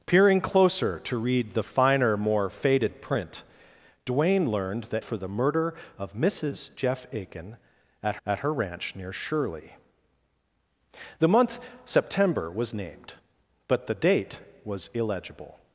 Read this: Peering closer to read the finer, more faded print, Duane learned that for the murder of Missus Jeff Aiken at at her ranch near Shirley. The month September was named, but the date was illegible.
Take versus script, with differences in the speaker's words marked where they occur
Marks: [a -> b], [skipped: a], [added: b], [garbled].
Peering closer to read the finer, more faded print, Duane learned that for the murder of Missus Jeff Aiken at at her ranch near Shirley. The month September was named, but the date was illegible.